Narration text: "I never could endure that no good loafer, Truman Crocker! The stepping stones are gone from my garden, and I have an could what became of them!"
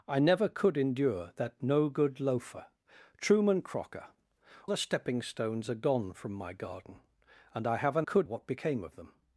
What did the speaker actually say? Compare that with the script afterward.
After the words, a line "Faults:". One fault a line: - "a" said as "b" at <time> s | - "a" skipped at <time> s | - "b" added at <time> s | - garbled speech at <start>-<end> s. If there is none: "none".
"I never could endure that no good loafer, Truman Crocker! The stepping stones are gone from my garden, and I have an could what became of them!"
Faults:
none